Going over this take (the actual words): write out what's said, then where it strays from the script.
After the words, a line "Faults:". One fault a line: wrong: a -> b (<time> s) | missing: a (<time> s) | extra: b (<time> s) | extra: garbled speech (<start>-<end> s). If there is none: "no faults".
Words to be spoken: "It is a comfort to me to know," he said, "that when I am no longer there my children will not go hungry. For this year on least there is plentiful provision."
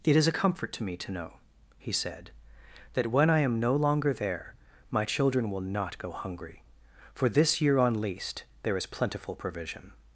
"It is a comfort to me to know," he said, "that when I am no longer there my children will not go hungry. For this year on least there is plentiful provision."
Faults:
no faults